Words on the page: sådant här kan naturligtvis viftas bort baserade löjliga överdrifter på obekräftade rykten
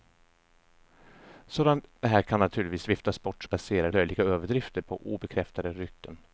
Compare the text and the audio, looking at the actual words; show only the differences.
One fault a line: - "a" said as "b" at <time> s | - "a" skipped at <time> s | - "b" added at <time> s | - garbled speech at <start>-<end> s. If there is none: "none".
none